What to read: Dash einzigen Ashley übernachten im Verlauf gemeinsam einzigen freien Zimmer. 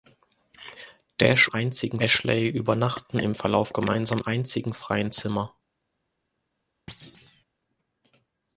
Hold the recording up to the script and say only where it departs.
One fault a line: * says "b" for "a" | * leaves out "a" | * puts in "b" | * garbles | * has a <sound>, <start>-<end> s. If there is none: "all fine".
* has a thud, 6.9-7.4 s